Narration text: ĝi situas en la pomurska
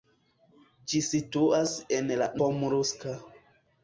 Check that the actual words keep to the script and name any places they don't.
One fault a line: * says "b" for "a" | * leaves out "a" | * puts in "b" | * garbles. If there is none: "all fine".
all fine